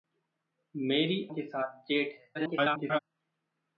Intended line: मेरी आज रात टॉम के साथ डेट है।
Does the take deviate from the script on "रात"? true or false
true